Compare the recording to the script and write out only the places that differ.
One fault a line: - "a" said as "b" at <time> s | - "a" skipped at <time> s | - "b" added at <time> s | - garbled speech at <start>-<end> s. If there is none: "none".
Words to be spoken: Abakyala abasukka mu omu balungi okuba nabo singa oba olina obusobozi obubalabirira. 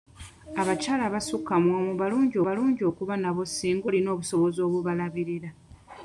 - "balungi" added at 2.5 s
- "oba" skipped at 3.9 s